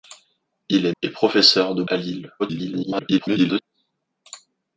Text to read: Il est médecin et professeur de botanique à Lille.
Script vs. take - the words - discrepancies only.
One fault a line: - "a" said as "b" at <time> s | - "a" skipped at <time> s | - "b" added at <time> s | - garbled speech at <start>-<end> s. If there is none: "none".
- "médecin" skipped at 0.9 s
- "botanique" skipped at 1.8 s
- garbled speech at 2.4-3.6 s